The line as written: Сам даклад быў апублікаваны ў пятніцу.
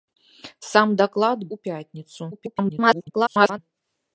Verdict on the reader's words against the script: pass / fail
fail